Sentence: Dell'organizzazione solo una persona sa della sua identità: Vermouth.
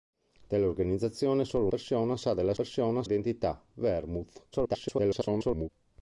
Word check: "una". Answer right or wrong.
wrong